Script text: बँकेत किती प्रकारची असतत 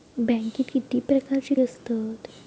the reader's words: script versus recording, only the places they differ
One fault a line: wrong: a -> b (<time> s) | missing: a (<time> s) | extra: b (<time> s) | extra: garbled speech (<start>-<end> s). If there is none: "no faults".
no faults